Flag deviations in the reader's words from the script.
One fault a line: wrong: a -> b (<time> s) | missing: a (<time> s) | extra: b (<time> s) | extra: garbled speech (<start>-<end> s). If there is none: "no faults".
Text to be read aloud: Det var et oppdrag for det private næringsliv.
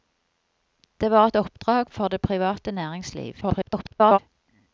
extra: garbled speech (3.4-4.2 s)